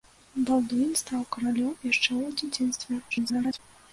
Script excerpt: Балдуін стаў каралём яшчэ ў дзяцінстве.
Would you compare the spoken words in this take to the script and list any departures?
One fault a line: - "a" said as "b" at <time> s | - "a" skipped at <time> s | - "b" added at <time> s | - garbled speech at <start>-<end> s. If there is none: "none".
- garbled speech at 3.1-3.6 s